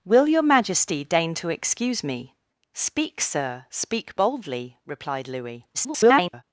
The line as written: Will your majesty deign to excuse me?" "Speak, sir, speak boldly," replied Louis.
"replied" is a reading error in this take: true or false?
false